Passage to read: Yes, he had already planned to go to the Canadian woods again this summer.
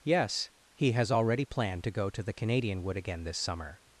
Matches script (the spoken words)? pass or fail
fail